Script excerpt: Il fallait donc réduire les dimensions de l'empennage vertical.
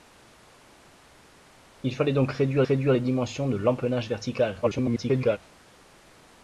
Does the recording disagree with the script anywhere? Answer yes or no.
yes